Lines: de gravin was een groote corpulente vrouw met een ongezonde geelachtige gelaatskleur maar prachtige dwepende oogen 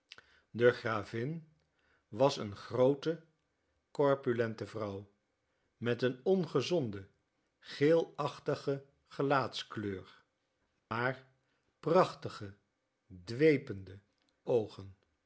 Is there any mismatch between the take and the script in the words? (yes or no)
no